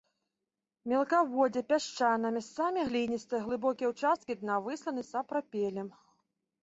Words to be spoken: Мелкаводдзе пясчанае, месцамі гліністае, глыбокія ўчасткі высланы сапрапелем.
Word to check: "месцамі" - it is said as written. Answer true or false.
true